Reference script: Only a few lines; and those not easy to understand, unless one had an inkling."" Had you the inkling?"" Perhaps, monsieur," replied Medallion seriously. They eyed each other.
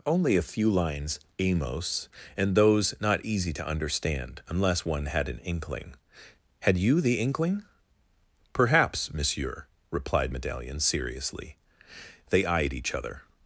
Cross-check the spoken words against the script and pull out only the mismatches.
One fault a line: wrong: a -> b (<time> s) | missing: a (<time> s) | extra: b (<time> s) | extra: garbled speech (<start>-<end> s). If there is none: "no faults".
extra: amos (1.4 s)